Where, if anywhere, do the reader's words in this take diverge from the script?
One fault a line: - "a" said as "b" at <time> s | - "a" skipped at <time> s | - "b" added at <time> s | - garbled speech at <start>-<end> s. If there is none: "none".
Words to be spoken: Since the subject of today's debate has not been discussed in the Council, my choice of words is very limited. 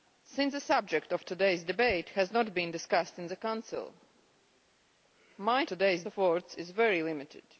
- "choice" said as "today's" at 5.7 s